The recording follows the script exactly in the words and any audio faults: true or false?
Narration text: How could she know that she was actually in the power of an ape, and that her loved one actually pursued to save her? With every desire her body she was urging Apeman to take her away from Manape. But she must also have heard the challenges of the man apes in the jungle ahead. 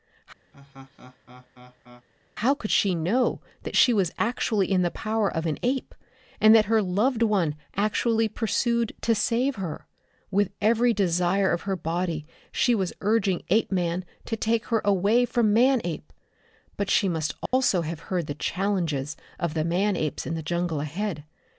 false